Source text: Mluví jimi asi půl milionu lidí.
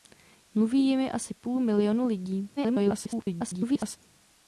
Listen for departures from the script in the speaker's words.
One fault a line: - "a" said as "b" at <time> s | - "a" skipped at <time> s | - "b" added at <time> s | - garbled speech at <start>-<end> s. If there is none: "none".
- garbled speech at 2.6-4.0 s